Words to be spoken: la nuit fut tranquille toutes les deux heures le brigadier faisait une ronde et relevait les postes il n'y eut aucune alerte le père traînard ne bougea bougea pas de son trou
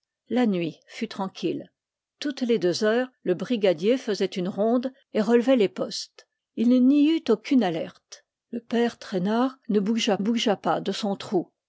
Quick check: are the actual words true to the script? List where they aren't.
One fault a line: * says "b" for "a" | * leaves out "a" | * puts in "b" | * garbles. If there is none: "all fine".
all fine